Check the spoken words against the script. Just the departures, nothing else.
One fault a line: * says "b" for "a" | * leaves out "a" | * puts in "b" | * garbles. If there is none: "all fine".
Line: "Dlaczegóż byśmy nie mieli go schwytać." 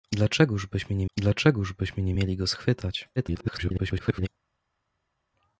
* puts in "dlaczegóż byśmy nie"
* garbles